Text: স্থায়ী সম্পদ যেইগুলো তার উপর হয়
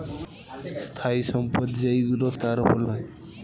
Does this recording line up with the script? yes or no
yes